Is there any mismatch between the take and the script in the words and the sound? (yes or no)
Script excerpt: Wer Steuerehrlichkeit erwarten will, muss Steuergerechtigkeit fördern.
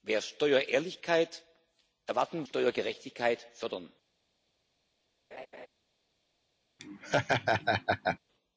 yes